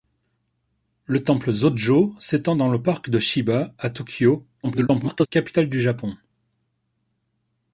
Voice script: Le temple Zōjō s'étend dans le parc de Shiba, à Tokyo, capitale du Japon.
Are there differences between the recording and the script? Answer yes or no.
yes